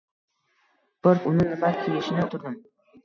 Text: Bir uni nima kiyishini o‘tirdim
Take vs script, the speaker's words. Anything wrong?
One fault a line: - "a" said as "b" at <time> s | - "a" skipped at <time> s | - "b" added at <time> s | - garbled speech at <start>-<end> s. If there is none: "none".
none